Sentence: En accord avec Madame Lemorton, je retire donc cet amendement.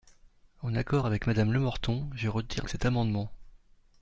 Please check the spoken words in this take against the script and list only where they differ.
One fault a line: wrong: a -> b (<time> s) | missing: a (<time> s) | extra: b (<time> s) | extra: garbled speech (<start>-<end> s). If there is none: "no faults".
missing: donc (2.7 s)